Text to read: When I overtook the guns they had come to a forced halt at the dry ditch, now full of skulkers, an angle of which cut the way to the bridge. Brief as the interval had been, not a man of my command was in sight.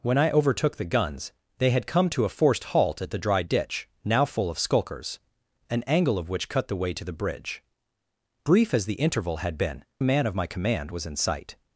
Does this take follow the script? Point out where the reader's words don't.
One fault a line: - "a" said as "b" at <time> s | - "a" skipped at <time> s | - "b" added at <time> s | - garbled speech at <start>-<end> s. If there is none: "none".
- "not" skipped at 9.8 s